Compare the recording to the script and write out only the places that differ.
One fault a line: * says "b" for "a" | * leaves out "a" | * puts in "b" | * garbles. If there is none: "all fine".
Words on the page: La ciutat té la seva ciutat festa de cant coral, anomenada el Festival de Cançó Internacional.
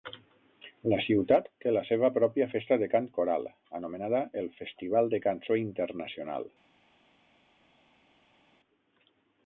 * says "pròpia" for "ciutat"